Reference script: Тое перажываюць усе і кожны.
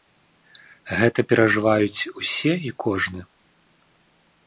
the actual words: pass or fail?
fail